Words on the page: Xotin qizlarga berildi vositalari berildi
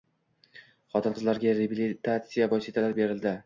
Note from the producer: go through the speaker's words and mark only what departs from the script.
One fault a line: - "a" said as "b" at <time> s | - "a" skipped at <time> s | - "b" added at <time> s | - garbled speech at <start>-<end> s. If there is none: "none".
- "berildi" said as "reabilitatsiya" at 1.6 s